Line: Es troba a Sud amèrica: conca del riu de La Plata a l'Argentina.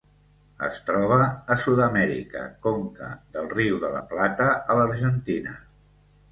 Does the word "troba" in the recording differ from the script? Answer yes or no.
no